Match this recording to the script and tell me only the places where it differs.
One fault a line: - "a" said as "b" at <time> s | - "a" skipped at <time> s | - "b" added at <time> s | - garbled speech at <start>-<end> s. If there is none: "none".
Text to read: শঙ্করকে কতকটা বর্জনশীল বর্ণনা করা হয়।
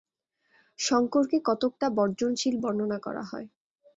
none